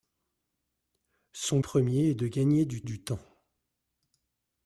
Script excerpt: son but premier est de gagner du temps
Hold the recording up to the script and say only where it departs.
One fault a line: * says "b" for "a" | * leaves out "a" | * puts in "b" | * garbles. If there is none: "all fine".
* leaves out "but"
* puts in "du"